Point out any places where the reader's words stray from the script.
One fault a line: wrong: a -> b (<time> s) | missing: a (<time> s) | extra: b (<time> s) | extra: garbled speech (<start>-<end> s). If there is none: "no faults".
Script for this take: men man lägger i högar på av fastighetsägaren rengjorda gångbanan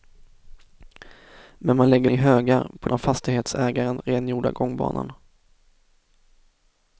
no faults